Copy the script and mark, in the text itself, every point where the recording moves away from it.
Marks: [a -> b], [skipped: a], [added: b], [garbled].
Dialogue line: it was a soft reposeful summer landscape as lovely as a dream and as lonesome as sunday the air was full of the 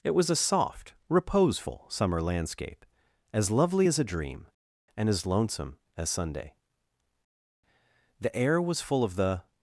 it was a soft reposeful summer landscape as lovely as a dream and as lonesome as sunday the air was full of the